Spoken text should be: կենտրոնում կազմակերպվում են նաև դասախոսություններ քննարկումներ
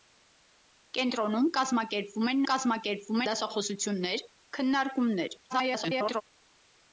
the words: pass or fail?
fail